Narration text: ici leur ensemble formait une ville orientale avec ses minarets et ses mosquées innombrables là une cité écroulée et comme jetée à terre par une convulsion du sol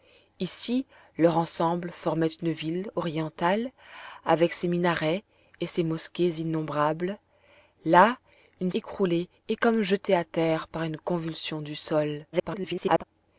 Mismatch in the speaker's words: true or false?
true